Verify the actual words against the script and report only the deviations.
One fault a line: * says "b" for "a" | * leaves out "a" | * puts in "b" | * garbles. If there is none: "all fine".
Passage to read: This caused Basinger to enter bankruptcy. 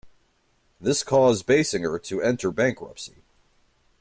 all fine